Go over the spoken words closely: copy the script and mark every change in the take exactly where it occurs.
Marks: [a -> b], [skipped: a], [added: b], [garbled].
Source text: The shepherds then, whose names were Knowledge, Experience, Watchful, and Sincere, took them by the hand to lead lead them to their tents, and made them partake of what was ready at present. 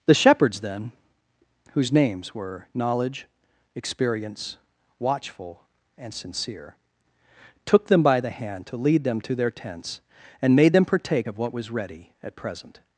The shepherds then, whose names were Knowledge, Experience, Watchful, and Sincere, took them by the hand to lead [skipped: lead] them to their tents, and made them partake of what was ready at present.